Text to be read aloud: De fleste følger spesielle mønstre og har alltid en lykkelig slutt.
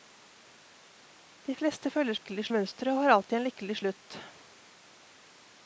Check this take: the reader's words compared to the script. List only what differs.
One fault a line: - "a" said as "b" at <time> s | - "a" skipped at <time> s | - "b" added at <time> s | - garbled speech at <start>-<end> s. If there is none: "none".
- "spesielle" said as "lykkelig" at 2.2 s